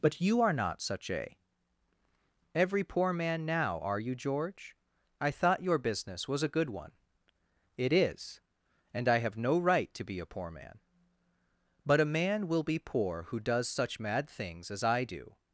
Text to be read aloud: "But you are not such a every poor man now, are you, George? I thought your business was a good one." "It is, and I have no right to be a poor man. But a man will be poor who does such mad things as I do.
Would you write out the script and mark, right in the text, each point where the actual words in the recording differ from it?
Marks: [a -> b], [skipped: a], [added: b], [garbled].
"But you are not such a every poor man now, are you, George? I thought your business was a good one." "It is, and I have no right to be a poor man. But a man will be poor who does such mad things as I do.